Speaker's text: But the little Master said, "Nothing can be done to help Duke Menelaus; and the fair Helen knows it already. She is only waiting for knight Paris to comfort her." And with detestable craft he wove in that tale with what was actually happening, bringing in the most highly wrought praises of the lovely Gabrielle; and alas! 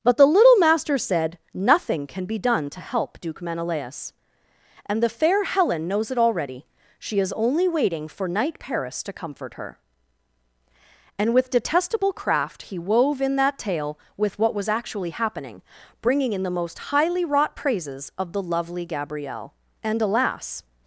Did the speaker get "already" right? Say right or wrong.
right